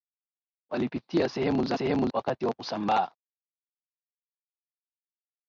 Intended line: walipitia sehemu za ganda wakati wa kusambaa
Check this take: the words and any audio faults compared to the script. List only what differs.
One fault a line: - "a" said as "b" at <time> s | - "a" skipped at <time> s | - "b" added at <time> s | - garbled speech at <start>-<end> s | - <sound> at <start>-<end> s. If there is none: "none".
- "ganda" said as "sehemu" at 1.7 s